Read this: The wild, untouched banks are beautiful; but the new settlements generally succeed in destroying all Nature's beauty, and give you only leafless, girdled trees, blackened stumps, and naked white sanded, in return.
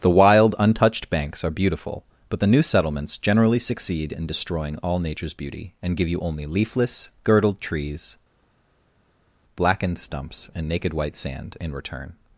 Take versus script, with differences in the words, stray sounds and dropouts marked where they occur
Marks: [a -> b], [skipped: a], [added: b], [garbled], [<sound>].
The wild, untouched banks are beautiful; but the new settlements generally succeed in destroying all Nature's beauty, and give you only leafless, girdled trees, blackened stumps, and naked white [sanded, -> sand] in return.